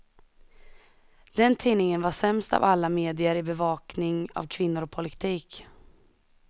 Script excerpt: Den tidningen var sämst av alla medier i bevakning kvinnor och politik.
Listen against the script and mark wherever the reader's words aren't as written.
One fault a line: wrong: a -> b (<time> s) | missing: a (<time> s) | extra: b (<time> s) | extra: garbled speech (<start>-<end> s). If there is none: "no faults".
extra: av (4.3 s)